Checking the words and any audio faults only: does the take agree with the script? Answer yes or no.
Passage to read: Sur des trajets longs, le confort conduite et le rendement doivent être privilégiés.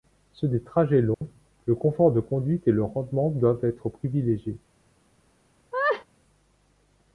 no